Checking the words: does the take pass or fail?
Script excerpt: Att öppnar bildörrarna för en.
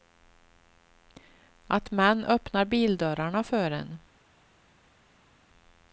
fail